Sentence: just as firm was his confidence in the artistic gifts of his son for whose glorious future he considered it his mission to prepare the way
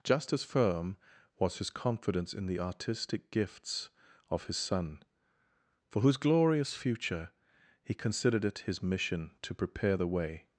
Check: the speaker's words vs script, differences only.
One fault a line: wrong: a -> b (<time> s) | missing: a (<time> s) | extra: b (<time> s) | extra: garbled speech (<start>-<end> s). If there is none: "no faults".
no faults